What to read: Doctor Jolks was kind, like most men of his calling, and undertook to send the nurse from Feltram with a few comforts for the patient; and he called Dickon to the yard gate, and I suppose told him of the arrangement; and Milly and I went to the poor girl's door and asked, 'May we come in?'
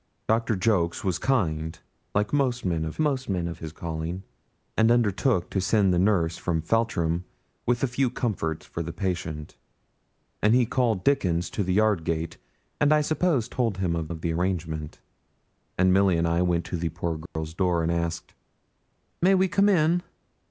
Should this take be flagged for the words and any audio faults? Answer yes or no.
yes